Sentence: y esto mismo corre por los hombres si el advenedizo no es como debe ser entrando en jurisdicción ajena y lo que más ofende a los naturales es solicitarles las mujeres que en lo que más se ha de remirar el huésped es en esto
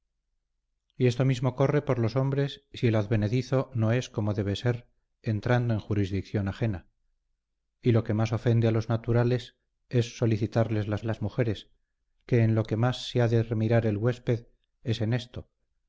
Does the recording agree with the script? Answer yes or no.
no